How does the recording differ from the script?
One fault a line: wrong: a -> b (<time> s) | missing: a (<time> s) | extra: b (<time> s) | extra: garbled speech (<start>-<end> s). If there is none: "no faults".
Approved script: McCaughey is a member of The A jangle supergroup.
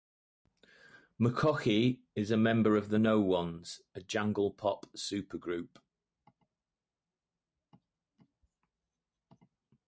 extra: No Ones (2.9 s)
extra: pop (4.5 s)